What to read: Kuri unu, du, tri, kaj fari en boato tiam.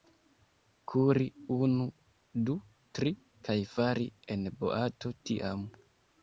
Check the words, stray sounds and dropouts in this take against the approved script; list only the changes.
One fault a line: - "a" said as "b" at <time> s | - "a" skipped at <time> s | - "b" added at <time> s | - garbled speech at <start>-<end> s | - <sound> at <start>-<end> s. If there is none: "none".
none